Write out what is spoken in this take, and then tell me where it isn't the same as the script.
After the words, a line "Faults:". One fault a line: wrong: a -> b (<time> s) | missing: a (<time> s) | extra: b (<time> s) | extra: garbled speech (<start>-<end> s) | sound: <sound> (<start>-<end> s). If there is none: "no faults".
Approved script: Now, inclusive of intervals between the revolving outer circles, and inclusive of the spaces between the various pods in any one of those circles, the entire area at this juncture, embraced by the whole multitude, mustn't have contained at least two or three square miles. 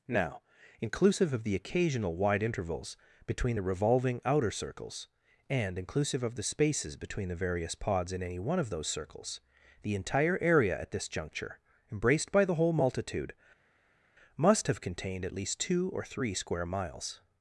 Now, inclusive of the occasional wide intervals between the revolving outer circles, and inclusive of the spaces between the various pods in any one of those circles, the entire area at this juncture, embraced by the whole multitude, must have contained at least two or three square miles.
Faults:
extra: the occasional wide (1.4 s)
wrong: mustn't -> must (14.4 s)